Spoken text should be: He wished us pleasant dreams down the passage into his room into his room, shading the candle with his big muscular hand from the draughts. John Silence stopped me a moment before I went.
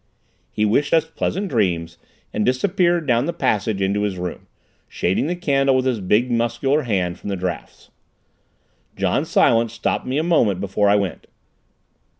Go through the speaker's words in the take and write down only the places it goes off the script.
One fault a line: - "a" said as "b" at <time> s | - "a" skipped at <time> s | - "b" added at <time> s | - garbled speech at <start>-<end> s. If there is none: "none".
- "and disappeared" added at 2.3 s
- "into his room" skipped at 4.5 s